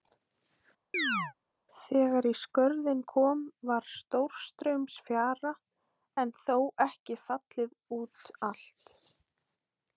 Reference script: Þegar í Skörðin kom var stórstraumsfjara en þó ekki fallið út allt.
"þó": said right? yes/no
yes